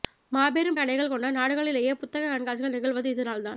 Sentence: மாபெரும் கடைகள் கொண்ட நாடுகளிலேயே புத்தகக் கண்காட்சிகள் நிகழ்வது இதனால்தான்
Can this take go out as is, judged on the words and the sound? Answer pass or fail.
pass